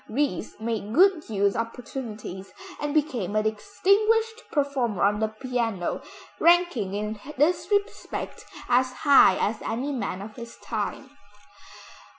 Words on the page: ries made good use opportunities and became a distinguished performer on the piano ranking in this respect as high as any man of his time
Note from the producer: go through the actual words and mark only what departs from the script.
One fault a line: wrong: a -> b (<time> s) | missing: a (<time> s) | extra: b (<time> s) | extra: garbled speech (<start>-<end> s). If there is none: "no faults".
no faults